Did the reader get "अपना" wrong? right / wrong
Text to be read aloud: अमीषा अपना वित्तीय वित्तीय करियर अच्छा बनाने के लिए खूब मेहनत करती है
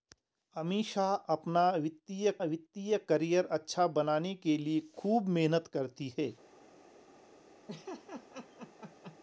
right